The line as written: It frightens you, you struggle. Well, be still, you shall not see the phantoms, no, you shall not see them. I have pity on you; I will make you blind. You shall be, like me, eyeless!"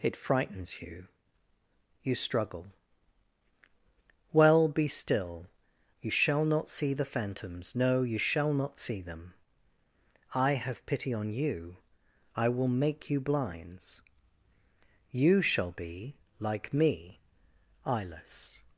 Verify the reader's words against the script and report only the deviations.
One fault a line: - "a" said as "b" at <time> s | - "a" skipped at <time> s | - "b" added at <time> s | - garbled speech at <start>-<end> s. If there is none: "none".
- "blind" said as "blinds" at 13.2 s